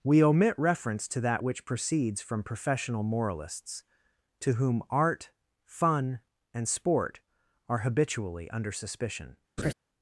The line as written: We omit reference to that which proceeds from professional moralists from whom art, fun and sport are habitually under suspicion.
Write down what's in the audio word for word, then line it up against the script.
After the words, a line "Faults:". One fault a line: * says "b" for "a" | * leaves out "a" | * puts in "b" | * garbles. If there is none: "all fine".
We omit reference to that which proceeds from professional moralists to whom art, fun and sport are habitually under suspicion.
Faults:
* says "to" for "from"